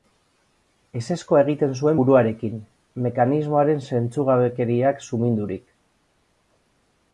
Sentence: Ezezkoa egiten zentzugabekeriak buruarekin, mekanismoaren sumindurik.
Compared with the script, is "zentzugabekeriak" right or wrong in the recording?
wrong